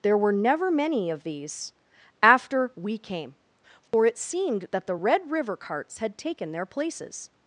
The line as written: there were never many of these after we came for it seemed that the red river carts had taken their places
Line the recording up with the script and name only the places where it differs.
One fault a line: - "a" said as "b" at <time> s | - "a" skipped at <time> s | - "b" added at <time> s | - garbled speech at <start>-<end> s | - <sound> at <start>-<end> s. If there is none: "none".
- dropout at 3.9-3.9 s